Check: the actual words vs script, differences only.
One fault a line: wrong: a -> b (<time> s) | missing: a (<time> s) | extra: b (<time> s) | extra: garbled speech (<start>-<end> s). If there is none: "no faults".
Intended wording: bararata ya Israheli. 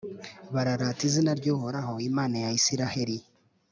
extra: izina ry'Uhoraho Imana (1.1 s)